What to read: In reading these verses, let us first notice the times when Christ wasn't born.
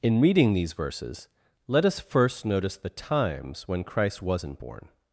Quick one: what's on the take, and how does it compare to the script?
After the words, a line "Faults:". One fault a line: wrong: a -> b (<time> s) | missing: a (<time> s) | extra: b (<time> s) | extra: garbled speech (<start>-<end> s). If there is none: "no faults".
In reading these verses, let us first notice the times when Christ wasn't born.
Faults:
no faults